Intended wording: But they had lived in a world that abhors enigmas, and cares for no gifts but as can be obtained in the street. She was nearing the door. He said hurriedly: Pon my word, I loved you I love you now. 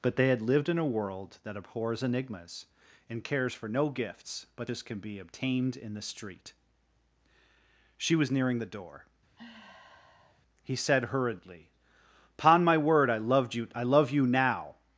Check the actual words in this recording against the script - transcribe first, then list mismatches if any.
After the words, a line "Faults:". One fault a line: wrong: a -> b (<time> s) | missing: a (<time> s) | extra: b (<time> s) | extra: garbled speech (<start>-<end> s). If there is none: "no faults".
But they had lived in a world that abhors enigmas, and cares for no gifts but as can be obtained in the street. She was nearing the door. He said hurriedly: Pon my word, I loved you I love you now.
Faults:
no faults